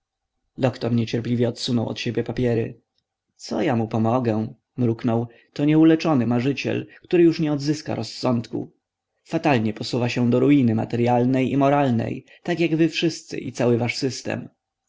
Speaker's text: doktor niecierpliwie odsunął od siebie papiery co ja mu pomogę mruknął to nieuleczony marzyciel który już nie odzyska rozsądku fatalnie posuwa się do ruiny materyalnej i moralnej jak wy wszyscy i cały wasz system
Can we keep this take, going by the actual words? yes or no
no